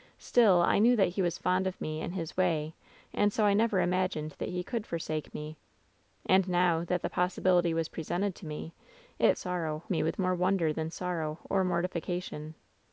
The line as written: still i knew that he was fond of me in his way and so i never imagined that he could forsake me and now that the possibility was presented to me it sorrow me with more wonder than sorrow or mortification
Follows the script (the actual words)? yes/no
yes